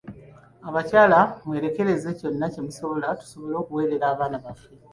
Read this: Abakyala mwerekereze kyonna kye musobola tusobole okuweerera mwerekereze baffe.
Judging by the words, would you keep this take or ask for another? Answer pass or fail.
fail